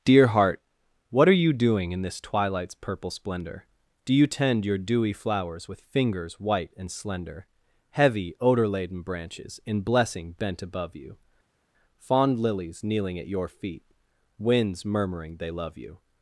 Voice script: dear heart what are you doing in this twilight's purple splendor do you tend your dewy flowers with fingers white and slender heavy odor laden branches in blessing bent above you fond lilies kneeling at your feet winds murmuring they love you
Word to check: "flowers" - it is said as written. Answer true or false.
true